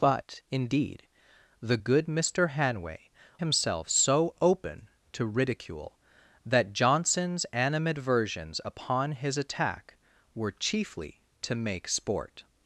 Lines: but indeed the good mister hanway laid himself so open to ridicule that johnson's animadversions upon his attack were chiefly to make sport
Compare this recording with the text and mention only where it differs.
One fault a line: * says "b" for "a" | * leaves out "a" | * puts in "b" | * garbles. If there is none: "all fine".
* leaves out "laid"